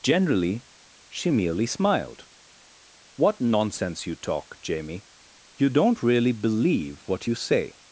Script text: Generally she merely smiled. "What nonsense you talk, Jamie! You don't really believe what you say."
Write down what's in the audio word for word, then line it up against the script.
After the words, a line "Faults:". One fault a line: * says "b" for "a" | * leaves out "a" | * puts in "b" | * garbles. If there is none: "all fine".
Generally she merely smiled. "What nonsense you talk, Jamie! You don't really believe what you say."
Faults:
all fine